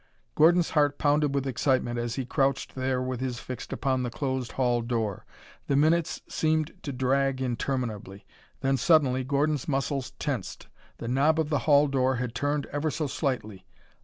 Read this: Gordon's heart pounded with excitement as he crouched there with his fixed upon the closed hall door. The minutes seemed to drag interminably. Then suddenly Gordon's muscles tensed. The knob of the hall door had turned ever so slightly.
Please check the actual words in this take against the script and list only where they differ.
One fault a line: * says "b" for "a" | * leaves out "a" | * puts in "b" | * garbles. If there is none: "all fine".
all fine